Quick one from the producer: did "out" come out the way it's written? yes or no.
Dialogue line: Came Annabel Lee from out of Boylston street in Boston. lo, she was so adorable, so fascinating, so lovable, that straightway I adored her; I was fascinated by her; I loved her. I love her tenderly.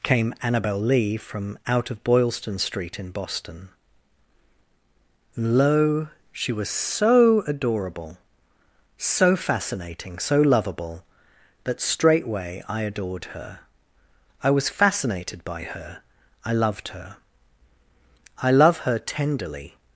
yes